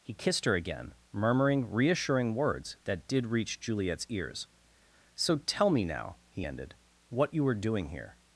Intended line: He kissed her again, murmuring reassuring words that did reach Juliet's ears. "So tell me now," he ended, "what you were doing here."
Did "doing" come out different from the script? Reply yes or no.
no